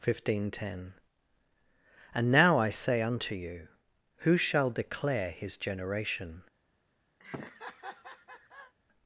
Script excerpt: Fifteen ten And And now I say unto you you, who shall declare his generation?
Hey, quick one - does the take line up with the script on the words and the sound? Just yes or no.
no